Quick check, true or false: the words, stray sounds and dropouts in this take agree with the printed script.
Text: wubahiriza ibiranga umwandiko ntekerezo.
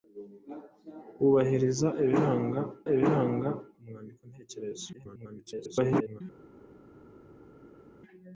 false